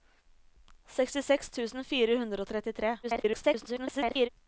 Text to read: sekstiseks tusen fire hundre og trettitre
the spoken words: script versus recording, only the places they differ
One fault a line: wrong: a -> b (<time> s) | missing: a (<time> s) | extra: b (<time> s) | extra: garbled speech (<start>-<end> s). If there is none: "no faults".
extra: garbled speech (3.0-4.3 s)